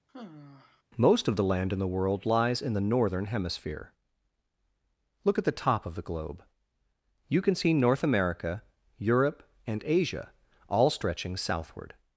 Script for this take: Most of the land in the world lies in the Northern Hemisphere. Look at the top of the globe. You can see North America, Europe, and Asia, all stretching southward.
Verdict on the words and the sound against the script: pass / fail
fail